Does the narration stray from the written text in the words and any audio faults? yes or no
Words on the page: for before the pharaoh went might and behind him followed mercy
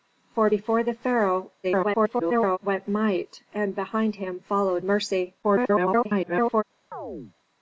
yes